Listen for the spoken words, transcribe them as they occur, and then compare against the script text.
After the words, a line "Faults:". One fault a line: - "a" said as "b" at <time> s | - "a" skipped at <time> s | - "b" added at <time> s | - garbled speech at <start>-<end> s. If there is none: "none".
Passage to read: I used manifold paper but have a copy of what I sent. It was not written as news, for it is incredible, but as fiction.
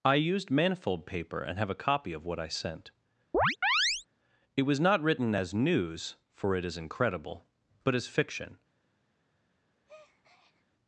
I used manifold paper and have a copy of what I sent. It was not written as news, for it is incredible, but as fiction.
Faults:
- "but" said as "and" at 1.4 s